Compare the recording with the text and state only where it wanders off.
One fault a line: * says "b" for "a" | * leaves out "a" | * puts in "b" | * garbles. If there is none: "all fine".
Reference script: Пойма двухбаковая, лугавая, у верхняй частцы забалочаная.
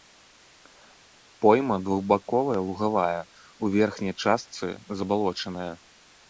all fine